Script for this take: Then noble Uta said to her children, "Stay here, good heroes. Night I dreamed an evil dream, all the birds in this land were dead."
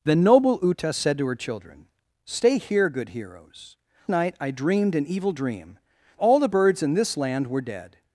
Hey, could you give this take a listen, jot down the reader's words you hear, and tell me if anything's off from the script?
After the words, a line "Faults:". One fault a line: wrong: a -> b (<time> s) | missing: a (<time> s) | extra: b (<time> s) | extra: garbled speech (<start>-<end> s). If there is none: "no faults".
Then noble Uta said to her children, "Stay here, good heroes. Night I dreamed an evil dream, all the birds in this land were dead."
Faults:
no faults